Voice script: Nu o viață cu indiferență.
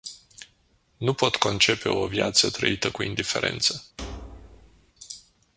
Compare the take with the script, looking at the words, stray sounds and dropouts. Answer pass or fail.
fail